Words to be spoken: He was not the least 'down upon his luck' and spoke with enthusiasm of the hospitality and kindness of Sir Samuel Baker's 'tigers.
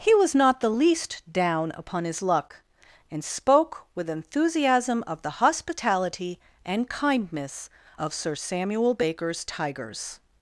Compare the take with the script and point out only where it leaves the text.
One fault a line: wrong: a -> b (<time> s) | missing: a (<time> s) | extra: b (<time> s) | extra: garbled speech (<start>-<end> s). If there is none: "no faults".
no faults